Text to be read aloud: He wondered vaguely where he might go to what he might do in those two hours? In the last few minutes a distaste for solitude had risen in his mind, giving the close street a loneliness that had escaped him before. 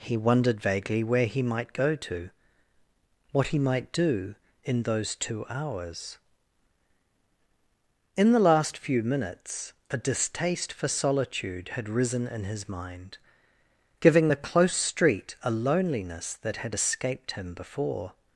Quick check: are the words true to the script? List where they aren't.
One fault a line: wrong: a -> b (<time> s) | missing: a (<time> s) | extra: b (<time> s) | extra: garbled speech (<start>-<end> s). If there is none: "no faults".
no faults